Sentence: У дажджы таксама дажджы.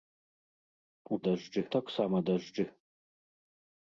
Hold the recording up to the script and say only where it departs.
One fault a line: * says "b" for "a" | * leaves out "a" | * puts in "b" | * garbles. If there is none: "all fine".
all fine